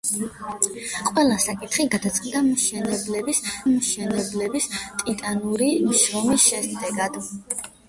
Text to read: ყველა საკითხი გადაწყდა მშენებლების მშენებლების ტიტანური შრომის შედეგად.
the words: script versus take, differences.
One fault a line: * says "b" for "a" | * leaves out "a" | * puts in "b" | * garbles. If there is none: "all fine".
all fine